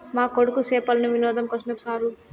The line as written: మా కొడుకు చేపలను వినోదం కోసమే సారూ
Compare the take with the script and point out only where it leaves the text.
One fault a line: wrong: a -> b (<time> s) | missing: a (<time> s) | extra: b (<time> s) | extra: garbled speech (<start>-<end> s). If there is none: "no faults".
no faults